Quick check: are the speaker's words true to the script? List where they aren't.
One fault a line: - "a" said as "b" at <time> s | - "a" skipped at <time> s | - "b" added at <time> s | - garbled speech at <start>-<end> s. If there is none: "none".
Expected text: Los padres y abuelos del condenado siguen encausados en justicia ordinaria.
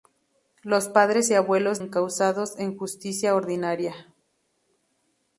- "del condenado siguen" skipped at 1.8 s